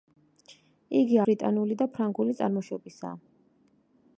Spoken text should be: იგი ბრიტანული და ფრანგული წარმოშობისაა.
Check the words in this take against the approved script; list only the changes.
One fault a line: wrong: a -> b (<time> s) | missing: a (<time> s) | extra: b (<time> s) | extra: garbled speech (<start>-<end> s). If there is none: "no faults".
no faults